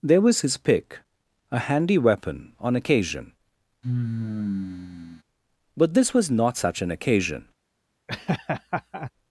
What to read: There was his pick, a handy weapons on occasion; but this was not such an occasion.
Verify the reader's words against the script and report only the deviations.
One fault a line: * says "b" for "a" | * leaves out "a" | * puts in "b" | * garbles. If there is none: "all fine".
* says "weapon" for "weapons"